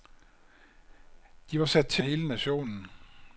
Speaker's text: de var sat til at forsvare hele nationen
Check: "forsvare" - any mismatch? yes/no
yes